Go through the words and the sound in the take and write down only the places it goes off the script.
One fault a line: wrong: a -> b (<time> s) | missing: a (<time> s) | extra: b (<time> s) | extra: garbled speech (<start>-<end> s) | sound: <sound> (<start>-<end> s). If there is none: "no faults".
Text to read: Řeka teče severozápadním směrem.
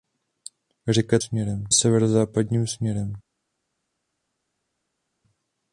wrong: teče -> směrem (1.2 s)